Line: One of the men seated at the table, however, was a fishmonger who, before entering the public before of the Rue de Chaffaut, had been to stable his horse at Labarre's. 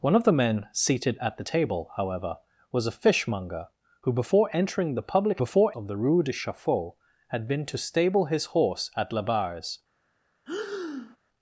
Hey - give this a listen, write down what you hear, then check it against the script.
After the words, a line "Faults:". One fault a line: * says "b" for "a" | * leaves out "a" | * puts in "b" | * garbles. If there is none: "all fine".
One of the men seated at the table, however, was a fishmonger who, before entering the public before of the Rue de Chaffaut, had been to stable his horse at Labarre's.
Faults:
all fine